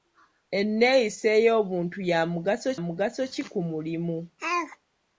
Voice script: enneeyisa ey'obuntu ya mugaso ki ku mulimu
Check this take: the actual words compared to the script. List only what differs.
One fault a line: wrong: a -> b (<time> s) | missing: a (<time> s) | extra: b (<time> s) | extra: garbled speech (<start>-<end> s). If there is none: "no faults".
extra: mugaso (2.9 s)